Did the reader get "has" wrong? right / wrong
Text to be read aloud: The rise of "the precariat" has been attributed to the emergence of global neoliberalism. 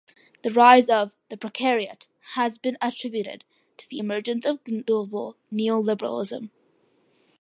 right